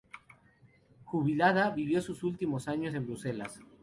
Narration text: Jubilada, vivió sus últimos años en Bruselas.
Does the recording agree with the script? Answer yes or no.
yes